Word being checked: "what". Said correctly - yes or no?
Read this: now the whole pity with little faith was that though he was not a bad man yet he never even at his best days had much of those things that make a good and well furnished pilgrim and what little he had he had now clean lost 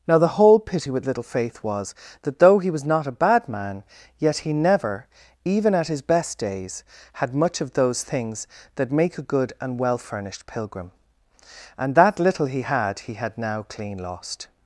no